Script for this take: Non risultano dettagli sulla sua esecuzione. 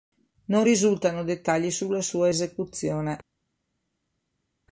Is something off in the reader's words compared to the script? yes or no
no